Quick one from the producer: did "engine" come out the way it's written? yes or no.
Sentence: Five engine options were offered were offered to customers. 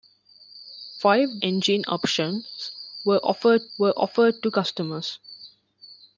yes